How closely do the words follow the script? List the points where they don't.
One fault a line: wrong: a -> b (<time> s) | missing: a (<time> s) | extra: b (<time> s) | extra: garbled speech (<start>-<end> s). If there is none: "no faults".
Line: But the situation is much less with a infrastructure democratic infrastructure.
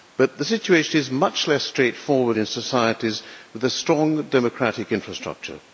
extra: straightforward in societies (1.6 s)
wrong: infrastructure -> strong (3.7 s)